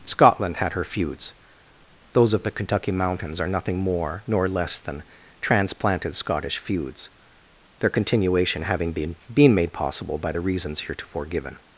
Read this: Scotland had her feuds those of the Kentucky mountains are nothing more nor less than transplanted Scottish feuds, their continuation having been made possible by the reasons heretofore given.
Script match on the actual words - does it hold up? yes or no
no